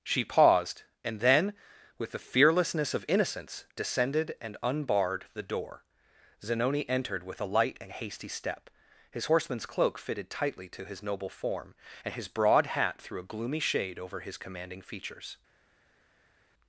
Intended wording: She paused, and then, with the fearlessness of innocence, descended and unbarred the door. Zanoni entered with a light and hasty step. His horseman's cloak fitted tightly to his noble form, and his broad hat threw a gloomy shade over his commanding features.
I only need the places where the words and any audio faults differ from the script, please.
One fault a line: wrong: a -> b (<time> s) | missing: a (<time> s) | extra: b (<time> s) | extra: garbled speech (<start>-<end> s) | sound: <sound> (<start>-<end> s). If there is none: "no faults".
no faults